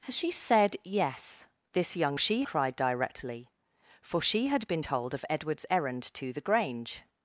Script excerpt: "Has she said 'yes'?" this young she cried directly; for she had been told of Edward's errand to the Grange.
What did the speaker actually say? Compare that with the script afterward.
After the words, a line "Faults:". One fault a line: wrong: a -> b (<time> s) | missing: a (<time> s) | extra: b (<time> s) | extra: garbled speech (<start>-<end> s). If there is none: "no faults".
"Has she said 'yes'?" this young she cried directly; for she had been told of Edward's errand to the Grange.
Faults:
no faults